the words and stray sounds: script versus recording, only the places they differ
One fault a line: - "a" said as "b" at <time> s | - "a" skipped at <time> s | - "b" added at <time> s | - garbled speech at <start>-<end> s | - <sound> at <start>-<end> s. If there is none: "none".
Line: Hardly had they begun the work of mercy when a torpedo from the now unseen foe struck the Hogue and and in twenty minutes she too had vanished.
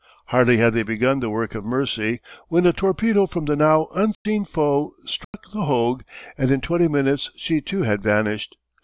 - dropout at 4.1-4.3 s
- dropout at 5.2-5.3 s
- "and" skipped at 6.5 s